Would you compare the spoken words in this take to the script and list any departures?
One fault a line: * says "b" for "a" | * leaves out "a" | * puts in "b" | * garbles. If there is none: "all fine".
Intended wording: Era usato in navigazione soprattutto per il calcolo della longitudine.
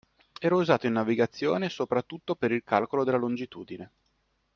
all fine